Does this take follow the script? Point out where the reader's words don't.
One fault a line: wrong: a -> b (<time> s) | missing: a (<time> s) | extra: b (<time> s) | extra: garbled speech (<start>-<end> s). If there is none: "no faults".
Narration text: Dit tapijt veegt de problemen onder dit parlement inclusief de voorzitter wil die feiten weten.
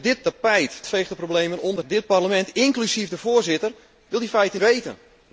no faults